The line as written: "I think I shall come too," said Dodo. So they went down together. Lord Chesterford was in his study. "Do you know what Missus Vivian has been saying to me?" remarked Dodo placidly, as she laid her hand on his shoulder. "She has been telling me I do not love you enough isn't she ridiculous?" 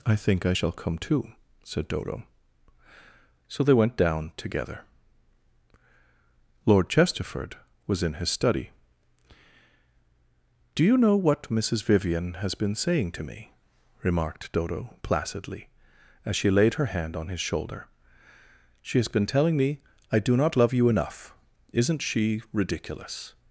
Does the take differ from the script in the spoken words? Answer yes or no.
no